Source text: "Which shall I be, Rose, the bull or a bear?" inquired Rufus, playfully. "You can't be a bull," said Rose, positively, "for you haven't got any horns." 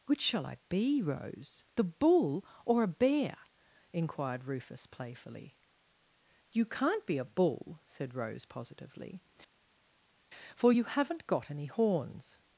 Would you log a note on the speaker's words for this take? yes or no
no